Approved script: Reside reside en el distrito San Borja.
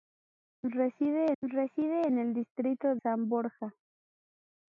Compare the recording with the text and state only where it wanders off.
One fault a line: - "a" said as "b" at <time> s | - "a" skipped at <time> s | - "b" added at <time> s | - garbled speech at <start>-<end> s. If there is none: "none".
none